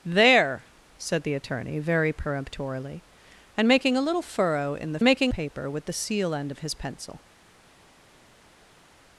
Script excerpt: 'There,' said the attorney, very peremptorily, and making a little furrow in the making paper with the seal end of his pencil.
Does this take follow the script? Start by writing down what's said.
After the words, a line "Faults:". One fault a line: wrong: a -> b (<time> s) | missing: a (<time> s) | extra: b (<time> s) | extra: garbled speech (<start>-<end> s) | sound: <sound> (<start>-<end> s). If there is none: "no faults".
'There,' said the attorney, very peremptorily, and making a little furrow in the making paper with the seal end of his pencil.
Faults:
no faults